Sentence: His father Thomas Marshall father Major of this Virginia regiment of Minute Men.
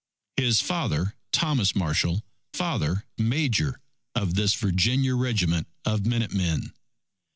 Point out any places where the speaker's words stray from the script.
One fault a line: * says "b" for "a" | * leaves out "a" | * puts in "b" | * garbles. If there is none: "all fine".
all fine